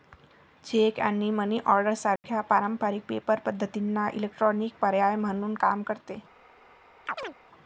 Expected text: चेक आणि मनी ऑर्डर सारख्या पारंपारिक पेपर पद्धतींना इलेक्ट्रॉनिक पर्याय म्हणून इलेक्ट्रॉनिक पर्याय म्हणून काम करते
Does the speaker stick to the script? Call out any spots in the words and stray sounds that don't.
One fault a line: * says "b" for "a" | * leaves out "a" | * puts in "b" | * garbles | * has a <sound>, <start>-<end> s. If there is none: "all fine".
* has a dropout, 2.2-2.2 s
* leaves out "इलेक्ट्रॉनिक पर्याय म्हणून"
* has a chirp, 7.1-7.3 s